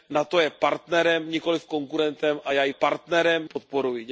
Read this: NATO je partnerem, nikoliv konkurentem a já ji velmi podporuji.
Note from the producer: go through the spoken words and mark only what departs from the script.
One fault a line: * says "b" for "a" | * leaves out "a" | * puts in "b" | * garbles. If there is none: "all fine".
* says "partnerem" for "velmi"